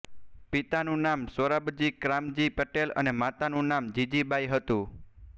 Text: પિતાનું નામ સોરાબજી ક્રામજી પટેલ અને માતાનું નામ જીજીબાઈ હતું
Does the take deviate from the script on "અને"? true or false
false